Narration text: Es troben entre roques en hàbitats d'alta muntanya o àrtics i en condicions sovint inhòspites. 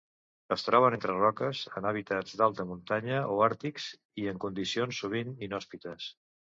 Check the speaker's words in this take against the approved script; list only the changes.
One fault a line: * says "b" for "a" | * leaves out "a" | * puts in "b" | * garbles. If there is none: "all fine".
all fine